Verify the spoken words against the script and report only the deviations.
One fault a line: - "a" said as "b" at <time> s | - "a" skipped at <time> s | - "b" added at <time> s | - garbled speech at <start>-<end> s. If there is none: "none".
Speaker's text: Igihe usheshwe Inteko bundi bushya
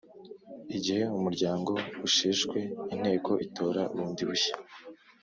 - "umuryango" added at 1.2 s
- "itora" added at 3.4 s